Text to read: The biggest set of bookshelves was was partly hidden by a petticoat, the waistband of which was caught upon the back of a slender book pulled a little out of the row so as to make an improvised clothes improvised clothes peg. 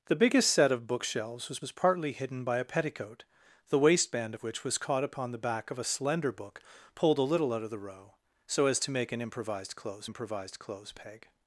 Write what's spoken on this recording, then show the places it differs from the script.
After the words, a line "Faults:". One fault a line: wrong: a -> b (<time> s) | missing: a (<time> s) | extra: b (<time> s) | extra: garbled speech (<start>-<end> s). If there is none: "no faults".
The biggest set of bookshelves was was partly hidden by a petticoat, the waistband of which was caught upon the back of a slender book pulled a little out of the row so as to make an improvised clothes improvised clothes peg.
Faults:
no faults